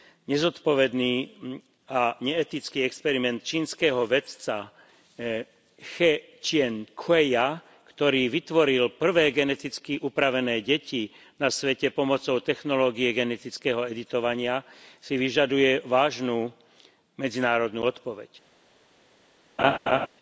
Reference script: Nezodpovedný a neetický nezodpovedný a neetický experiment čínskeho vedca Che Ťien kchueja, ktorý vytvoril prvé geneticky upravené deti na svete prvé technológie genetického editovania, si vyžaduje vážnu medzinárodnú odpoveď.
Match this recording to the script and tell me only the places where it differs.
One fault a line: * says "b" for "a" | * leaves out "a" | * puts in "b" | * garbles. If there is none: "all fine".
* leaves out "nezodpovedný a neetický"
* says "pomocou" for "prvé"